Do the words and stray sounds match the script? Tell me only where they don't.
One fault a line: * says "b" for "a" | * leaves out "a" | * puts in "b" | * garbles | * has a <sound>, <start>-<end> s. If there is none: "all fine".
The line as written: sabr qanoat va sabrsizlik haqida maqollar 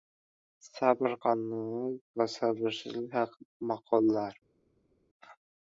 all fine